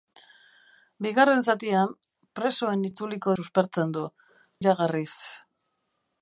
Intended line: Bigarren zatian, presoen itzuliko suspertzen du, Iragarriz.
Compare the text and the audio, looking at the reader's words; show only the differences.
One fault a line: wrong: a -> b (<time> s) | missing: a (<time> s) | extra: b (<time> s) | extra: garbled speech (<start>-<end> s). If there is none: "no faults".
no faults